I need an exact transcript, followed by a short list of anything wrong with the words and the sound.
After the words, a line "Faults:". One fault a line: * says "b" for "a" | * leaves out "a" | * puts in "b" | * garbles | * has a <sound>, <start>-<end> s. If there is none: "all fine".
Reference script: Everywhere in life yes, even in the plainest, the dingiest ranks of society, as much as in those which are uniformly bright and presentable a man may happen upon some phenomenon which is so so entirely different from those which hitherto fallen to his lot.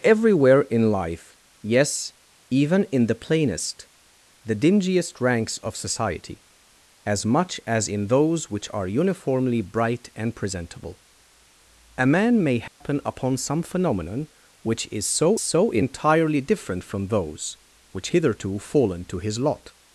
Everywhere in life yes, even in the plainest, the dingiest ranks of society, as much as in those which are uniformly bright and presentable a man may happen upon some phenomenon which is so so entirely different from those which hitherto fallen to his lot.
Faults:
* has a dropout, 12.7-12.8 s